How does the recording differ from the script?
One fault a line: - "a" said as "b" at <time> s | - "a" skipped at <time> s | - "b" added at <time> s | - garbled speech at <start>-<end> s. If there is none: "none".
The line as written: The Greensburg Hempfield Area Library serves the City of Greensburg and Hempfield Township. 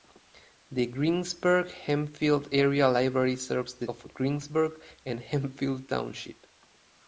- "City" skipped at 3.9 s